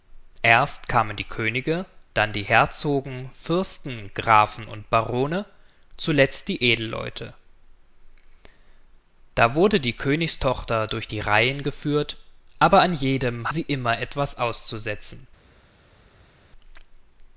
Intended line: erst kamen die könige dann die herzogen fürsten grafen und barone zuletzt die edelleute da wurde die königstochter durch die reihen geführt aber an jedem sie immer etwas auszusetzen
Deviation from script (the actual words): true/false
false